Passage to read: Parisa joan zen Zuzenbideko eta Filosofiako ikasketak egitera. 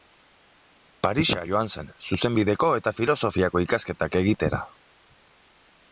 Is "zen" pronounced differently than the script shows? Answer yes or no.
no